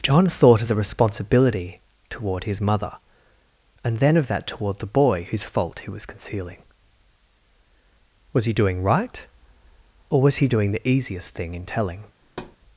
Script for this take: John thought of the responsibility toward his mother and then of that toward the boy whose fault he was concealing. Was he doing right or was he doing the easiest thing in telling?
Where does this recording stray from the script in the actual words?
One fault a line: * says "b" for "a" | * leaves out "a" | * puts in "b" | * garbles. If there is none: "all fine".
all fine